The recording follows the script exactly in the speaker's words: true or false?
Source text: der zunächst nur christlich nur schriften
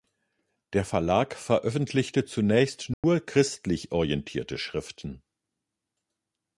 false